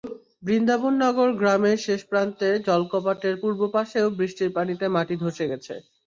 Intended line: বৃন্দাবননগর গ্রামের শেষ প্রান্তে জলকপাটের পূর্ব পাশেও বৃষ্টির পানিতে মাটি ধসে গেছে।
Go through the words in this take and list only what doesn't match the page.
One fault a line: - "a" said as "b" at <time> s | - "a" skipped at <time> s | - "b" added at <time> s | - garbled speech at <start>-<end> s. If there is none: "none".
none